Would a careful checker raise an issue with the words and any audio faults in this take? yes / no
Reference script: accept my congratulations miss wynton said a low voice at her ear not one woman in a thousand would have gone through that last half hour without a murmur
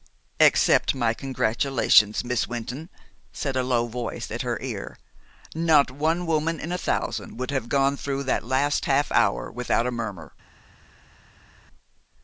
no